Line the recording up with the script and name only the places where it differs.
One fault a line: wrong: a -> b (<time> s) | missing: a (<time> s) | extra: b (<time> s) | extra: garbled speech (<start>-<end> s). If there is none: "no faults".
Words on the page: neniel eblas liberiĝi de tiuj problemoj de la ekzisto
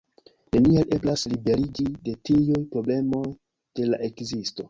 no faults